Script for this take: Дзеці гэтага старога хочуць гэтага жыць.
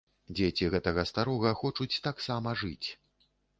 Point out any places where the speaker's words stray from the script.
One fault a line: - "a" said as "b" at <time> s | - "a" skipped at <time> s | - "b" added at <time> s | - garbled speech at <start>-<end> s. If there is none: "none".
- "гэтага" said as "таксама" at 2.1 s